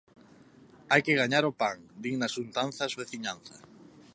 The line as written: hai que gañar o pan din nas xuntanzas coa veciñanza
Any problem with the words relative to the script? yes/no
yes